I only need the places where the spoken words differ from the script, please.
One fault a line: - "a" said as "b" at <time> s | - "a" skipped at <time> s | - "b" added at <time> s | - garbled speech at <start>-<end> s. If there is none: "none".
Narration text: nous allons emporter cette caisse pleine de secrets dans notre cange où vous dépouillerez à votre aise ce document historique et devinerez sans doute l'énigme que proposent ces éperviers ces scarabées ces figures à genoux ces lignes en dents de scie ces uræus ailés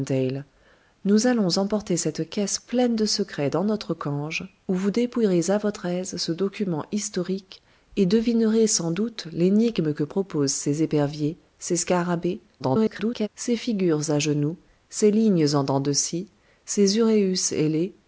- garbled speech at 12.6-13.3 s